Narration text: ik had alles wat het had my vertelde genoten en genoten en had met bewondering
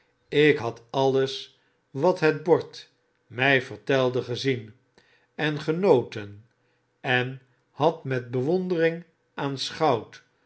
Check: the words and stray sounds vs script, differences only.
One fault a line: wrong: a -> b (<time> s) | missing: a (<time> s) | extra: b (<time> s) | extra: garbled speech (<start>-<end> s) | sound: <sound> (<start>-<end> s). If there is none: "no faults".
wrong: had -> bord (2.4 s)
wrong: genoten -> gezien (4.2 s)